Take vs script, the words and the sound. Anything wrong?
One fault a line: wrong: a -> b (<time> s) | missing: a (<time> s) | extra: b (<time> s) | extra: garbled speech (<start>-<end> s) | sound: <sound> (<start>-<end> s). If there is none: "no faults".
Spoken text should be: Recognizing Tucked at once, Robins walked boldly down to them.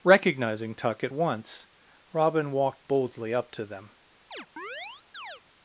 wrong: Tucked -> Tuck (0.7 s)
wrong: Robins -> Robin (2.1 s)
wrong: down -> up (3.3 s)
sound: chirp (4.3-5.4 s)